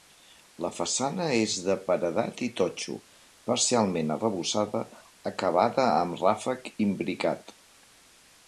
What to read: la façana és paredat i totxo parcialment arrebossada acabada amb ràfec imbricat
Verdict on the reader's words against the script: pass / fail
fail